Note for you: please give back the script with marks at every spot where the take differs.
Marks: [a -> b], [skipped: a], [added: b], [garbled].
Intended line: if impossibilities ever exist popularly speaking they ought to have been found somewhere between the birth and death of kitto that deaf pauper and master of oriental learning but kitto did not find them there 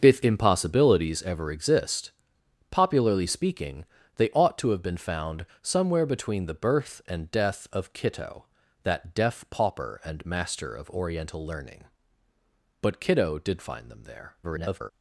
if impossibilities ever exist popularly speaking they ought to have been found somewhere between the birth and death of kitto that deaf pauper and master of oriental learning but kitto did [skipped: not] find them there [garbled]